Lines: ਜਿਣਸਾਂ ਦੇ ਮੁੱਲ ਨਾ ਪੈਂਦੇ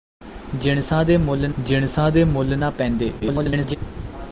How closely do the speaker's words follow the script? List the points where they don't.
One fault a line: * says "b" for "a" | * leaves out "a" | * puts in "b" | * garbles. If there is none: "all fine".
* puts in "ਜਿਣਸਾਂ ਦੇ ਮੁੱਲ"
* garbles